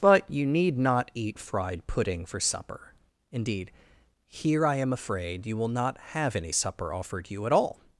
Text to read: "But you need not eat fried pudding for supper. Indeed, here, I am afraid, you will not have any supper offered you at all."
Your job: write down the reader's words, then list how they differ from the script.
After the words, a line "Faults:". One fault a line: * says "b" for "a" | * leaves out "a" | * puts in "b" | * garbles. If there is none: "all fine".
"But you need not eat fried pudding for supper. Indeed, here, I am afraid, you will not have any supper offered you at all."
Faults:
all fine